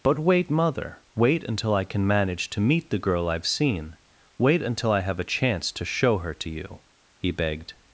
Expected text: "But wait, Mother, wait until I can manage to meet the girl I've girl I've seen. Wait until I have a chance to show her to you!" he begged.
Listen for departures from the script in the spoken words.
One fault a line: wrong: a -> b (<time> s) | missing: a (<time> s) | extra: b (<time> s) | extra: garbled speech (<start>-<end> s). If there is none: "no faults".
missing: girl I've (3.5 s)